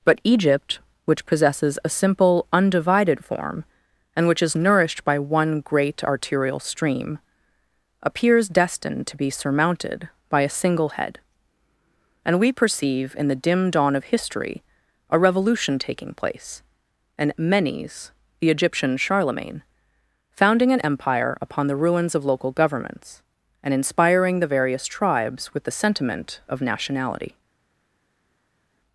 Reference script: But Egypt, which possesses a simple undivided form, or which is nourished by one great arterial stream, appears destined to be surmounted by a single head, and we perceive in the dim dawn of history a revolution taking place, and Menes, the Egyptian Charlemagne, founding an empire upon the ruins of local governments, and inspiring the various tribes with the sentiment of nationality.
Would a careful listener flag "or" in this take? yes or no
yes